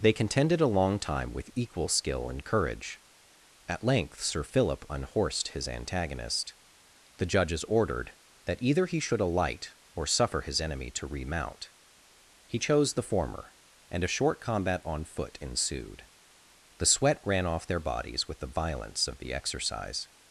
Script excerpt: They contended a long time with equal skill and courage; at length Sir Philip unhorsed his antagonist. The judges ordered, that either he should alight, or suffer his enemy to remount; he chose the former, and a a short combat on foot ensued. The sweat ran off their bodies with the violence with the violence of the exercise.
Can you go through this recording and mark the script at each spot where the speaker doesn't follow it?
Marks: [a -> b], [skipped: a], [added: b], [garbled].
They contended a long time with equal skill and courage; at length Sir Philip unhorsed his antagonist. The judges ordered, that either he should alight, or suffer his enemy to remount; he chose the former, and a [skipped: a] short combat on foot ensued. The sweat ran off their bodies with the violence [skipped: with the violence] of the exercise.